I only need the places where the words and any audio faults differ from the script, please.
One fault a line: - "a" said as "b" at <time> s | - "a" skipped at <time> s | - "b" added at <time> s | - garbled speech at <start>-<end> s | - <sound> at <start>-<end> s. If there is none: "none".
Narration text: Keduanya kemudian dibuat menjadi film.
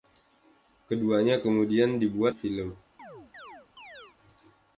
- "menjadi" skipped at 2.3 s
- chirp at 3.0-4.2 s